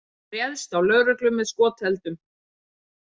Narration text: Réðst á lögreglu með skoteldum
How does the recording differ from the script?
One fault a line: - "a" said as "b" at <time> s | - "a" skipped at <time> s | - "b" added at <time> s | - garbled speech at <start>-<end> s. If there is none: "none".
none